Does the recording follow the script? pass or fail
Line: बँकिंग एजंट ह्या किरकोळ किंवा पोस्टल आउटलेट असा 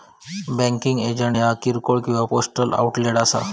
pass